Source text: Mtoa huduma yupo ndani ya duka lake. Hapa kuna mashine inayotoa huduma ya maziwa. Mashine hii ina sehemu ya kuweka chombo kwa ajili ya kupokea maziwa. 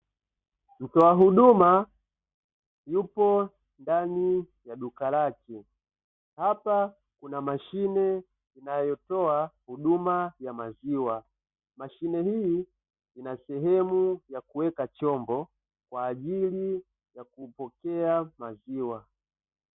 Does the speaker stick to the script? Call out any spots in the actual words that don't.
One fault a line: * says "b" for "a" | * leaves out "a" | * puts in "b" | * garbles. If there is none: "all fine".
all fine